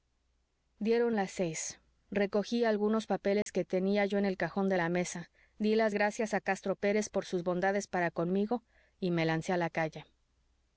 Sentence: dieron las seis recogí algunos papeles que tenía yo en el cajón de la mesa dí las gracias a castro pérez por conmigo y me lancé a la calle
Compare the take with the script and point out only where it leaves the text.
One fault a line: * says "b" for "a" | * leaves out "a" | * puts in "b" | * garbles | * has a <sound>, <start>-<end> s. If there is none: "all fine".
* has a dropout, 3.4-3.5 s
* puts in "sus bondades para"